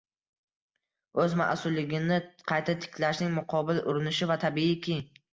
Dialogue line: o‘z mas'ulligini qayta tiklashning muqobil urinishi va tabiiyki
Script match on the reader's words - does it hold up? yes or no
yes